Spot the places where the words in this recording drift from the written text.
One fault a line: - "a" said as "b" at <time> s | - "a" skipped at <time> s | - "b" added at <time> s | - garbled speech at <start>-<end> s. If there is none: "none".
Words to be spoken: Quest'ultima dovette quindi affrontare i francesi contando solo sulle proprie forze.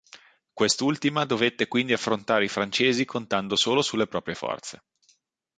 none